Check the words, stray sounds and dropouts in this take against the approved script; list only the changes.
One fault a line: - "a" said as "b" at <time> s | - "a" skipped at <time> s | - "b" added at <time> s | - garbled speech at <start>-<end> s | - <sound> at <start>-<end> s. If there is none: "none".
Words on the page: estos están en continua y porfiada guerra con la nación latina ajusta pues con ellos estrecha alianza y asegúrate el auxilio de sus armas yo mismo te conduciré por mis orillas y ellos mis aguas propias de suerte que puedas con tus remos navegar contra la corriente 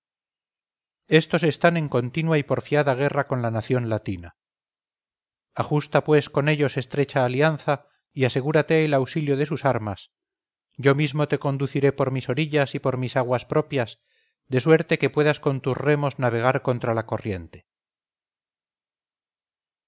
- "ellos" said as "por" at 12.8 s